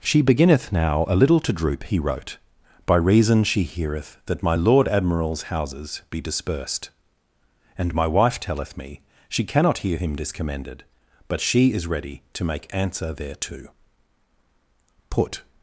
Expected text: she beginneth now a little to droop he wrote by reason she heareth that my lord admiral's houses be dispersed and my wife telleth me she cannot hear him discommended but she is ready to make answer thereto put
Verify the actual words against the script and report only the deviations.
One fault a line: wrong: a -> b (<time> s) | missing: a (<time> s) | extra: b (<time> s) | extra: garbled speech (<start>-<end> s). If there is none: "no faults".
no faults